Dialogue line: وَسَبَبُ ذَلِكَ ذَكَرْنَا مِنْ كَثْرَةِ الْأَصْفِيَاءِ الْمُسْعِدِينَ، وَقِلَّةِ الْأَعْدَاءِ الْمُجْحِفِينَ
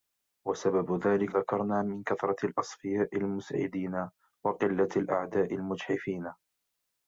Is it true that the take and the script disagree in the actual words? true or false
false